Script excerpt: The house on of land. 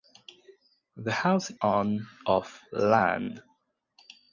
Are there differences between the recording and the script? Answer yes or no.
no